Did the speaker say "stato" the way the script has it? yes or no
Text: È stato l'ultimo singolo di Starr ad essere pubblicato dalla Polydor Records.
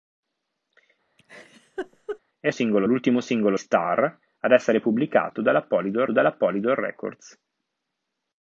no